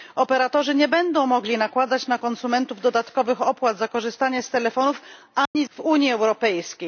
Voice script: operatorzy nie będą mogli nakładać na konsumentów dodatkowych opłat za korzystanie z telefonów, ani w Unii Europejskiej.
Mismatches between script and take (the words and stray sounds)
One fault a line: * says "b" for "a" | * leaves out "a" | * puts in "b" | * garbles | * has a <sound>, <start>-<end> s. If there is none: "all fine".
* has a dropout, 5.5-5.6 s